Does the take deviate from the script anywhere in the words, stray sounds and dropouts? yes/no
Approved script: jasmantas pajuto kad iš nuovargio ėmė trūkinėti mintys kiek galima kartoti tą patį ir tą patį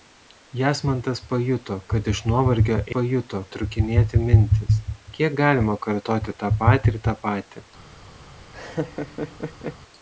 yes